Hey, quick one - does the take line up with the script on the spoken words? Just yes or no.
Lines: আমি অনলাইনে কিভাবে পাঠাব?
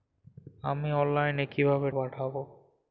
yes